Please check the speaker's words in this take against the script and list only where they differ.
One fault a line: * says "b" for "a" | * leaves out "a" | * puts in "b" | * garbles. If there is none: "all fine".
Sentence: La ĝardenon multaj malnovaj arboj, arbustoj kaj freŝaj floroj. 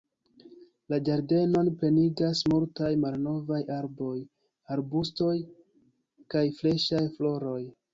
* puts in "plenigas"